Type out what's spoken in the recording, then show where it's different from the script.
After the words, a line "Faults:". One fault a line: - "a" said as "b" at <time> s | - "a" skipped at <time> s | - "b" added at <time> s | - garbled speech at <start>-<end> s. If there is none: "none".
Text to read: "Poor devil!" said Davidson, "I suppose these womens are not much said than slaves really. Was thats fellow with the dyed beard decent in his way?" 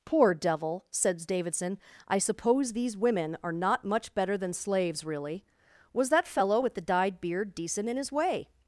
"Poor devil!" said Davidson, "I suppose these women are not much better than slaves really. Was that fellow with the dyed beard decent in his way?"
Faults:
- "womens" said as "women" at 3.0 s
- "said" said as "better" at 4.1 s
- "thats" said as "that" at 6.1 s